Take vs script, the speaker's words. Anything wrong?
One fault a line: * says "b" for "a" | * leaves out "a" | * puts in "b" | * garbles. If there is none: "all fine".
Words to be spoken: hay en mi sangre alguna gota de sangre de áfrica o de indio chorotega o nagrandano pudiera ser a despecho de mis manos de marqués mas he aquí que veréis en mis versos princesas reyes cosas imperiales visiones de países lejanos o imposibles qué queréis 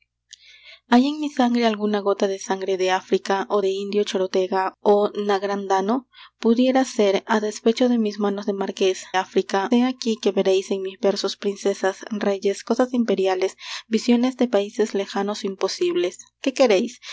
* says "áfrica" for "mas"